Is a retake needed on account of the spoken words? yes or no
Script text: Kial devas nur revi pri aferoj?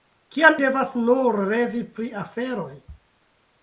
no